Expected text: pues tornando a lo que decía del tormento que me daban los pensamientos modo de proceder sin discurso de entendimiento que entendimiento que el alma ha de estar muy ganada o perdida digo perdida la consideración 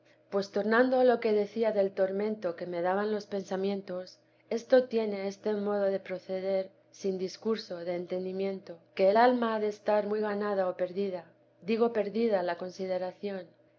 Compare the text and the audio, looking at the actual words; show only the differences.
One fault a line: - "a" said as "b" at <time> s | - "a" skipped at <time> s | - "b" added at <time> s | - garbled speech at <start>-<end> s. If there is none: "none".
- "esto tiene este" added at 4.5 s
- "entendimiento que" skipped at 9.1 s